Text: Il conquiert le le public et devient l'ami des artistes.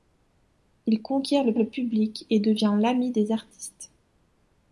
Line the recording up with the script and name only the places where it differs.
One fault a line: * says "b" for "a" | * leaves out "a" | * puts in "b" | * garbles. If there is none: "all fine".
all fine